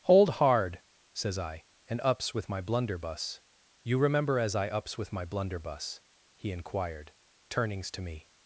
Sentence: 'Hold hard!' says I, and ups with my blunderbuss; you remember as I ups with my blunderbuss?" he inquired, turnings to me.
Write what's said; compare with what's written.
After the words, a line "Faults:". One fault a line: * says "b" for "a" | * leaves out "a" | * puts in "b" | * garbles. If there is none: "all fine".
'Hold hard!' says I, and ups with my blunderbuss; you remember as I ups with my blunderbuss?" he inquired, turnings to me.
Faults:
all fine